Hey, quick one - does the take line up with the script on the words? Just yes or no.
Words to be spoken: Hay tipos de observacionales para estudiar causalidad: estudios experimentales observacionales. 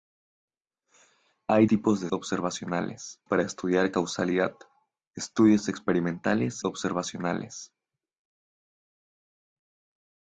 yes